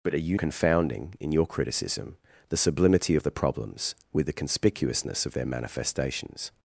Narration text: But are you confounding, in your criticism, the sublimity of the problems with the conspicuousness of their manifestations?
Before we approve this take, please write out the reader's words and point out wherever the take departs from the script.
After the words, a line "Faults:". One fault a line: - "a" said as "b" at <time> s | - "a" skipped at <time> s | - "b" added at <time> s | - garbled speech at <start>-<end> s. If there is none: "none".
But are you confounding, in your criticism, the sublimity of the problems with the conspicuousness of their manifestations?
Faults:
none